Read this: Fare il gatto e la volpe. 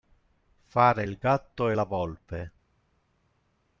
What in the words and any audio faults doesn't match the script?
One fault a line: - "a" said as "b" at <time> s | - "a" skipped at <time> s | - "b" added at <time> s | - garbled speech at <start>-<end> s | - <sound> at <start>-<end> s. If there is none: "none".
none